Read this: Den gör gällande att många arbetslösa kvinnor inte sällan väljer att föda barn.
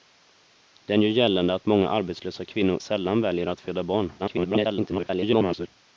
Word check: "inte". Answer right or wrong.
wrong